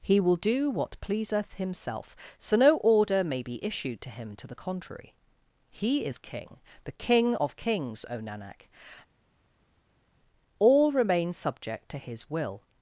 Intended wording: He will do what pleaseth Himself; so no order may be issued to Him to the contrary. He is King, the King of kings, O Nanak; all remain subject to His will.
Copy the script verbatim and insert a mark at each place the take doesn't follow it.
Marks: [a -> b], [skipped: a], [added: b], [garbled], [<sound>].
He will do what pleaseth Himself; so no order may be issued to Him to the contrary. He is King, the King of kings, O Nanak; all remain subject to His will.